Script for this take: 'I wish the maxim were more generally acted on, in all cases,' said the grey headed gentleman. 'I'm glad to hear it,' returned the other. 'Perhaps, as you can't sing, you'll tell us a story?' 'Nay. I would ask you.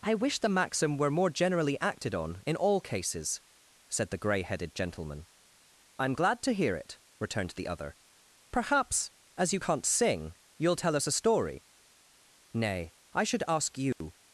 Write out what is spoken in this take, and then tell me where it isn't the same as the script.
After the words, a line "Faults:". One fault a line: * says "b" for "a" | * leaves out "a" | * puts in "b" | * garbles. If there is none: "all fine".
'I wish the maxim were more generally acted on, in all cases,' said the grey headed gentleman. 'I'm glad to hear it,' returned the other. 'Perhaps, as you can't sing, you'll tell us a story?' 'Nay. I should ask you.
Faults:
* says "should" for "would"